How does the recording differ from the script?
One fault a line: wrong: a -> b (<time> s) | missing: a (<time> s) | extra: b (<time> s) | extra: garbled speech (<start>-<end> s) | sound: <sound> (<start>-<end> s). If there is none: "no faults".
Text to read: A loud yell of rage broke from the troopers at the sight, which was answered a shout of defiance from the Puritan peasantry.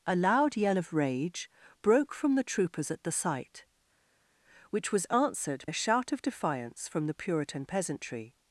no faults